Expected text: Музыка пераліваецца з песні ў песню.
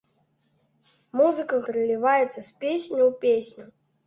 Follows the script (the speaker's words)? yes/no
yes